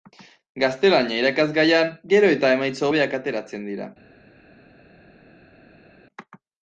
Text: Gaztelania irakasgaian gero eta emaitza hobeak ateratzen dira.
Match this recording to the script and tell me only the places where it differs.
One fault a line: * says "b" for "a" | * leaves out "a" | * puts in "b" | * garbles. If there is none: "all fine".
all fine